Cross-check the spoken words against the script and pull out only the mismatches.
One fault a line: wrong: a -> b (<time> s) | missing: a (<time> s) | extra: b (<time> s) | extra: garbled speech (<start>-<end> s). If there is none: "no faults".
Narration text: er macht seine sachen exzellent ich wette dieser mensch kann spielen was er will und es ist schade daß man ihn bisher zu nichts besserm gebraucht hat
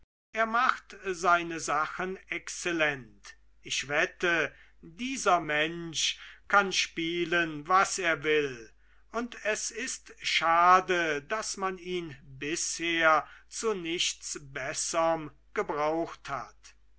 no faults